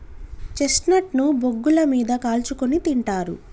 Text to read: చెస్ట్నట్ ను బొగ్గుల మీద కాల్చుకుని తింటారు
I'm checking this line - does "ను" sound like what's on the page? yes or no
yes